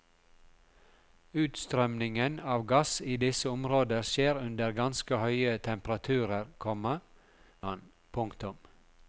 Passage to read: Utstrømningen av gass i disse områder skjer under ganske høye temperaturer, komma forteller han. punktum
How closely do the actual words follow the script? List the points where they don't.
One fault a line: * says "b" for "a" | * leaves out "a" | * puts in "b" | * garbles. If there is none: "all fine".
* leaves out "forteller"